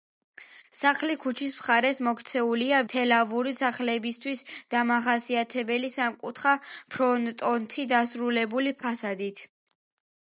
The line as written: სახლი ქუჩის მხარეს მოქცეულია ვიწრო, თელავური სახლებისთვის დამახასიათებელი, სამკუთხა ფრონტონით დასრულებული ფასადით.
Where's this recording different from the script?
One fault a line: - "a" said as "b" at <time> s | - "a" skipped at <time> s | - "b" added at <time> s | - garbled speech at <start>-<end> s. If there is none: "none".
- "ვიწრო" skipped at 2.8 s